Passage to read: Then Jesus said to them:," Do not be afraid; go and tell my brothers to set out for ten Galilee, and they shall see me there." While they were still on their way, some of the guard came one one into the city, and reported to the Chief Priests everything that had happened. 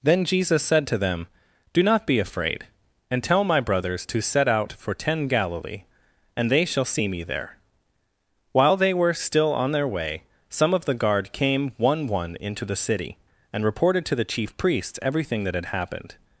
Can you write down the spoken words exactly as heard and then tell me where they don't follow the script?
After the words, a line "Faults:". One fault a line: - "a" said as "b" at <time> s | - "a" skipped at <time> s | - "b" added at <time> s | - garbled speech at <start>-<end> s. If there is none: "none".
Then Jesus said to them:," Do not be afraid; and tell my brothers to set out for ten Galilee, and they shall see me there." While they were still on their way, some of the guard came one one into the city, and reported to the Chief Priests everything that had happened.
Faults:
- "go" skipped at 2.6 s